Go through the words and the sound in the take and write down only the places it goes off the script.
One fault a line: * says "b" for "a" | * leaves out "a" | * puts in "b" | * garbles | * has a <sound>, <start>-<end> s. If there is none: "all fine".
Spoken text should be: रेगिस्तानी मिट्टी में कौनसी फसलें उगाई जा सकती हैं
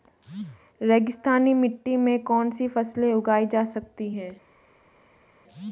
all fine